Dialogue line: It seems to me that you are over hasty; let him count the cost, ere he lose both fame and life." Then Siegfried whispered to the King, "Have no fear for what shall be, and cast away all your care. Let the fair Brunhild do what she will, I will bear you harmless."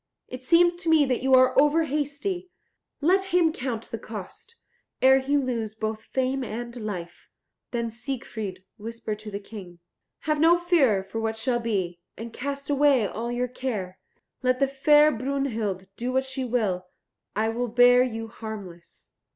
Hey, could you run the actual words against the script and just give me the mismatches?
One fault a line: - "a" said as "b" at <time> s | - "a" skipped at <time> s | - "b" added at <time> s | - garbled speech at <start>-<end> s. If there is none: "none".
none